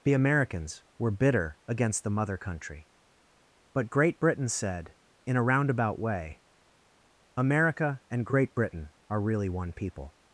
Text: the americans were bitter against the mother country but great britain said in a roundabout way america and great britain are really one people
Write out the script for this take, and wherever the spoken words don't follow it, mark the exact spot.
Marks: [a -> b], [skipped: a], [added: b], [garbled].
the americans were bitter against the mother country but great britain said in a roundabout way america and great britain are really one people